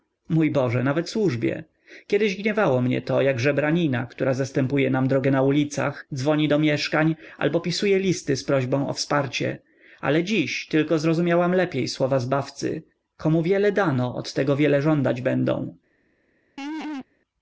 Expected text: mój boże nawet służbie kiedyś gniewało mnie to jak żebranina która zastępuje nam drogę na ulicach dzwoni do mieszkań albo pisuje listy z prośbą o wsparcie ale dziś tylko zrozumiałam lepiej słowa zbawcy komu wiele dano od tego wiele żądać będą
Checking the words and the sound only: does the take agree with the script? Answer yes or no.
no